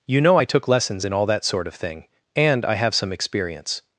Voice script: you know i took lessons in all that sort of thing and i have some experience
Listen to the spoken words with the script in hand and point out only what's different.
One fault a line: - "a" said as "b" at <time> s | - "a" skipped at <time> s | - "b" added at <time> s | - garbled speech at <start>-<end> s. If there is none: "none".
none